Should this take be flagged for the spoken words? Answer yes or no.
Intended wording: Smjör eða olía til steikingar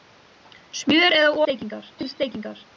yes